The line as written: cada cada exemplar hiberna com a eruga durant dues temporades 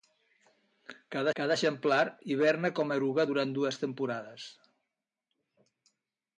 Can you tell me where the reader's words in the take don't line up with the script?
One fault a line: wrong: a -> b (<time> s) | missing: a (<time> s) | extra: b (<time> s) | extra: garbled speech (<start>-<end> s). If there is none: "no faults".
no faults